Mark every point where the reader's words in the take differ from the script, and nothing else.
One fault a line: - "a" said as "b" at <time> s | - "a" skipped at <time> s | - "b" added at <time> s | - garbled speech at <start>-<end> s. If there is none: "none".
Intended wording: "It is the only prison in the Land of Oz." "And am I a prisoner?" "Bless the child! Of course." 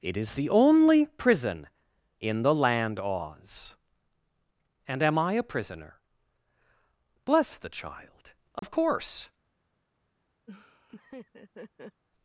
- "of" skipped at 3.0 s